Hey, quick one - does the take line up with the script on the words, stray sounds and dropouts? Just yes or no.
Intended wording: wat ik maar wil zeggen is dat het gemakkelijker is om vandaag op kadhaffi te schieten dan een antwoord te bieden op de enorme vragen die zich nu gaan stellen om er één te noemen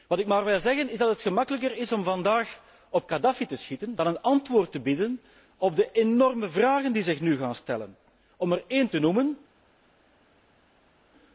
yes